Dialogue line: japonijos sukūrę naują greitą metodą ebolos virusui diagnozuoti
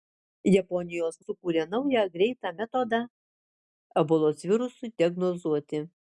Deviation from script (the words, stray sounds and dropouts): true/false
false